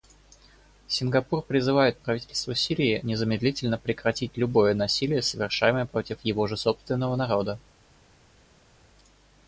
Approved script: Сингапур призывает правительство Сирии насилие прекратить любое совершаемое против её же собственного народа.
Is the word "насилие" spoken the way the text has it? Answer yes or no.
no